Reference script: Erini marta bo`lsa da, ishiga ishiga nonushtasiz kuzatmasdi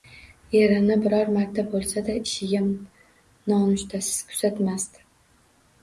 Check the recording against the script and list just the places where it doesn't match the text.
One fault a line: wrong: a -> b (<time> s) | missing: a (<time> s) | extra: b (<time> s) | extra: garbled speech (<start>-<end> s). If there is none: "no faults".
extra: biror (1.0 s)
missing: ishiga (2.6 s)